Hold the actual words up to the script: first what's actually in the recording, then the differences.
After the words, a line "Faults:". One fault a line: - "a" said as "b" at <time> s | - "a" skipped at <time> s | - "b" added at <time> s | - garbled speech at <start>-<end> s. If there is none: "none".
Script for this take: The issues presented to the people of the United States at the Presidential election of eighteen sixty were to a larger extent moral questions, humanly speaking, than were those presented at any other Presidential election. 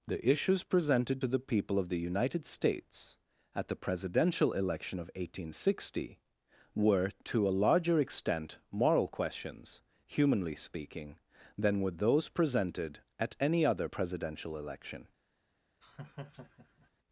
The issues presented to the people of the United States at the Presidential election of eighteen sixty were to a larger extent moral questions, humanly speaking, than were those presented at any other Presidential election.
Faults:
none